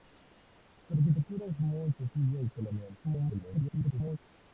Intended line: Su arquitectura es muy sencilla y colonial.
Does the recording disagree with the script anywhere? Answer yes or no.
yes